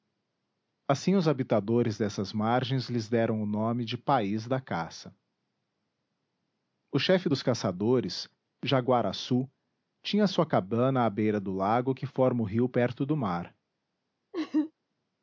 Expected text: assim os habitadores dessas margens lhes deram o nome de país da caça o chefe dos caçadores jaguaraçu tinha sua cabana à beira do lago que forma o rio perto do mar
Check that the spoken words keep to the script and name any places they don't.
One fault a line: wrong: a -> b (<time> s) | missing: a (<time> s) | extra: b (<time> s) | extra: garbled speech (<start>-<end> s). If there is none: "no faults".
no faults